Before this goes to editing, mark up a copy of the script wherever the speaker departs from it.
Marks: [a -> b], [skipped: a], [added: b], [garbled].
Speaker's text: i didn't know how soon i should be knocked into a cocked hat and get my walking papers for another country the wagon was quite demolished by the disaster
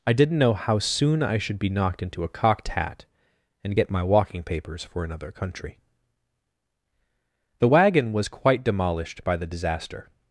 i didn't know how soon i should be knocked into a cocked hat and get my walking papers for another country the wagon was quite demolished by the disaster